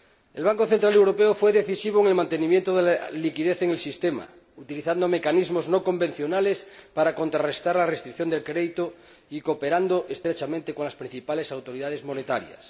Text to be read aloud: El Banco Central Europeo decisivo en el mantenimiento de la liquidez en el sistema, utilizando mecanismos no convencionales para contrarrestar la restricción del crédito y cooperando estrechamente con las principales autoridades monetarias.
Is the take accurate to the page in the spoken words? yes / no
no